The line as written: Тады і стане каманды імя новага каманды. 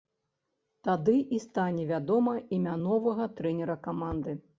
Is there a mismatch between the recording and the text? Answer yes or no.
yes